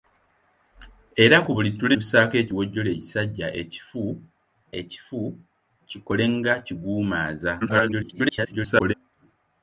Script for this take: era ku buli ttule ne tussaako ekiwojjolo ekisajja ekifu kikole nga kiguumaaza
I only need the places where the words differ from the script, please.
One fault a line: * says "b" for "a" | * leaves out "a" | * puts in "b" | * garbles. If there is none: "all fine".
* leaves out "ne"
* puts in "ekifu"
* garbles